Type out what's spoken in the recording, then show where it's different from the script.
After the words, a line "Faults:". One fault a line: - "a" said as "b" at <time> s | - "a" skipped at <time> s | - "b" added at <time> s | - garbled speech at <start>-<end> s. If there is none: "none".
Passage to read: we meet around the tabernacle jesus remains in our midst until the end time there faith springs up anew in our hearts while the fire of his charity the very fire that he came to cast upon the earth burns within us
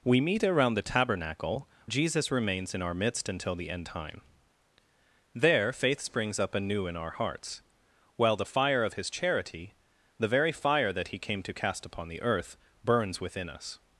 we meet around the tabernacle jesus remains in our midst until the end time there faith springs up anew in our hearts while the fire of his charity the very fire that he came to cast upon the earth burns within us
Faults:
none